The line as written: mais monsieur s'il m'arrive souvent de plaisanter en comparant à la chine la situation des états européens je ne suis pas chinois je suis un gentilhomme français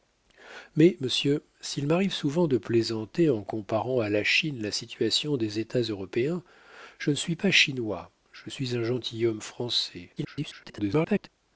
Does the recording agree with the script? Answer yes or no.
no